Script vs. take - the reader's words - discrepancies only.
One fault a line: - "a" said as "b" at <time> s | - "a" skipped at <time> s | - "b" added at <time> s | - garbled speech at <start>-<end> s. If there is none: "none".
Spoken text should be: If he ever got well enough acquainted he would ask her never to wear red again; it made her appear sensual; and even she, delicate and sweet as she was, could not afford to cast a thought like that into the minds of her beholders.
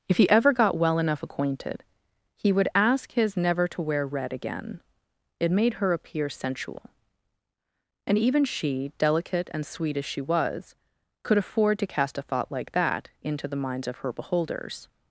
- "her" said as "his" at 3.1 s
- "not" skipped at 11.4 s